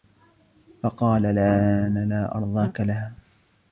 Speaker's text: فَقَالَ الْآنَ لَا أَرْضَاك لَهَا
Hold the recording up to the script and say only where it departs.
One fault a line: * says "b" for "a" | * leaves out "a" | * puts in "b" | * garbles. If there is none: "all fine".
all fine